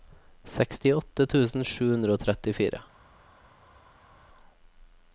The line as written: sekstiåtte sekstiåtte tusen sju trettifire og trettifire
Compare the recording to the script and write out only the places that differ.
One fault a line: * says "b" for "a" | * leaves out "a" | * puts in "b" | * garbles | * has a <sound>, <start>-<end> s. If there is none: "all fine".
* leaves out "sekstiåtte"
* says "hundre" for "trettifire"